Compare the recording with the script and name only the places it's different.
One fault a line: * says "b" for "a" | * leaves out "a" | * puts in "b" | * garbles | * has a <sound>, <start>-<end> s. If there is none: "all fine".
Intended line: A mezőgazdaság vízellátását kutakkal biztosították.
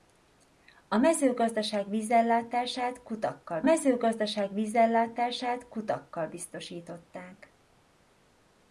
* puts in "mezőgazdaság vízellátását kutakkal"